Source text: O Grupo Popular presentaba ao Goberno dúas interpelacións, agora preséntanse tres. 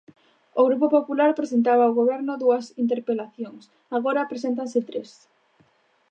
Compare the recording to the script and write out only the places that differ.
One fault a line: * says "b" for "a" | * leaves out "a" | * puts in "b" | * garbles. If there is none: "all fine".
all fine